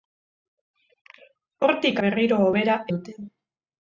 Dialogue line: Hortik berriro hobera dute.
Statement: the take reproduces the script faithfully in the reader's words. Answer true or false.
true